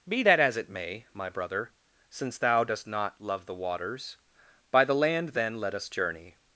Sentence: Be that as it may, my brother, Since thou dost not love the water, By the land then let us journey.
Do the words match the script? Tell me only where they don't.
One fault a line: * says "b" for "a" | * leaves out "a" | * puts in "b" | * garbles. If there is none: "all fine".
* says "waters" for "water"